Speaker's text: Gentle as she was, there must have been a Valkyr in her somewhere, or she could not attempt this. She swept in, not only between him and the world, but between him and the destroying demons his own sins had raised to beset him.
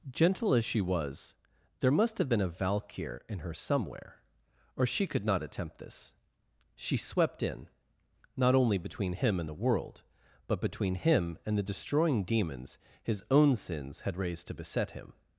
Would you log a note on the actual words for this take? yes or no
no